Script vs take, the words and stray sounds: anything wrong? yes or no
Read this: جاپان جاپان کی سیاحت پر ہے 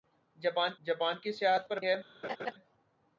yes